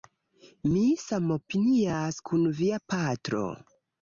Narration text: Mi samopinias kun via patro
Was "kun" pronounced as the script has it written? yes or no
yes